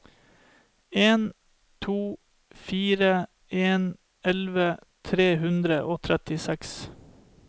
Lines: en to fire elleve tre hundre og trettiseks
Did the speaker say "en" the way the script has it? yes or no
yes